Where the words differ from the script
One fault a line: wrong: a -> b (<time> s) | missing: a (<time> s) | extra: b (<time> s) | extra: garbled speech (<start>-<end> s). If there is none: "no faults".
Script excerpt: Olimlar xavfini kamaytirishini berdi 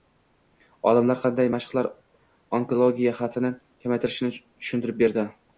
extra: qanday mashqlar onkologiya (1.2 s)
extra: tushuntirib (4.4 s)